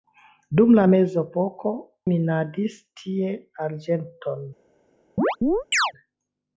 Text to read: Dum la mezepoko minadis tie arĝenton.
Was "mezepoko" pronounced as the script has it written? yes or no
yes